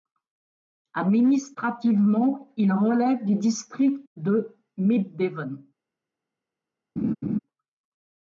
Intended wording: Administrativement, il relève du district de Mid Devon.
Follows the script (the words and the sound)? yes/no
no